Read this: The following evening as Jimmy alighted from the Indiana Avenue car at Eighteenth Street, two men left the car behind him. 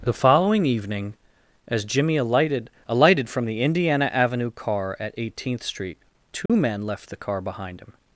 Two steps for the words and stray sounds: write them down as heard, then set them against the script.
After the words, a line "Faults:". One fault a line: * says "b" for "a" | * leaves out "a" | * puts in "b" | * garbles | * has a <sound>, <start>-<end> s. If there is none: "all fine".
The following evening as Jimmy alighted alighted from the Indiana Avenue car at Eighteenth Street, two men left the car behind him.
Faults:
* puts in "alighted"
* has a dropout, 6.5-6.5 s